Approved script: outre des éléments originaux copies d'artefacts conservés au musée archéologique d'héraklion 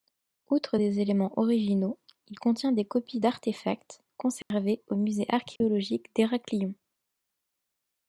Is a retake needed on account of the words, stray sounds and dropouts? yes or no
yes